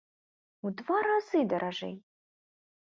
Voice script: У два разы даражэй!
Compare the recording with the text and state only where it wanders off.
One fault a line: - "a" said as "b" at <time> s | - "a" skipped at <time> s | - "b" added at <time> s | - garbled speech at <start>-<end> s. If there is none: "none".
none